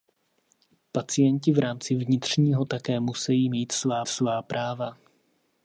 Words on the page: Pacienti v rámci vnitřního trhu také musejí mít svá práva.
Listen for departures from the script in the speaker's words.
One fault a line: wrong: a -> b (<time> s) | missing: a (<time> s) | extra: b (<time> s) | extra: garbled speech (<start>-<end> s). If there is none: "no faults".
missing: trhu (2.6 s)
extra: svá (4.1 s)